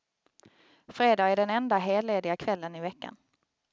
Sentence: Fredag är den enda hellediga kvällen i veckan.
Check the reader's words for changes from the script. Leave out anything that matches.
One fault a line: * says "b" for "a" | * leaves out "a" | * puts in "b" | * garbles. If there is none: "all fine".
all fine